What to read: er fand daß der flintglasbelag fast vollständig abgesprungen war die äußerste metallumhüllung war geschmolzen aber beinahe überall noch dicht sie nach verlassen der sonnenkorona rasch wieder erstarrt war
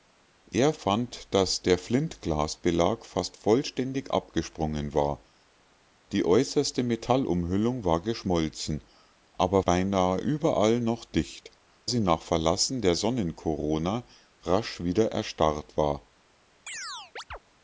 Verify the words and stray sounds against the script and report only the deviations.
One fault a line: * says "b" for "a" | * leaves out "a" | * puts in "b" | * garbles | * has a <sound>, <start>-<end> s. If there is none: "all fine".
* has a chirp, 16.7-17.4 s